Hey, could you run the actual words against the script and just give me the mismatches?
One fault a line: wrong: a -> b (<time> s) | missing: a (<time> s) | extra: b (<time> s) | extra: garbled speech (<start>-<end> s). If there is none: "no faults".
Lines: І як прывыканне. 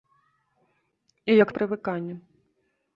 no faults